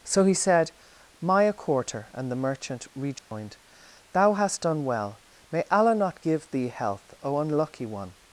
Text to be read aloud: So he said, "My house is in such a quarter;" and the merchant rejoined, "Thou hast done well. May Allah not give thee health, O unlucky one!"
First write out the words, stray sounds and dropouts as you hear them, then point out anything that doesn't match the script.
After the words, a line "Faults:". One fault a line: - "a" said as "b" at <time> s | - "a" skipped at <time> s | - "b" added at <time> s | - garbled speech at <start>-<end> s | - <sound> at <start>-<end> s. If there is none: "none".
So he said, "My a quarter;" and the merchant rejoined, "Thou hast done well. May Allah not give thee health, O unlucky one!"
Faults:
- "house is in such" skipped at 1.4 s
- dropout at 3.2-3.3 s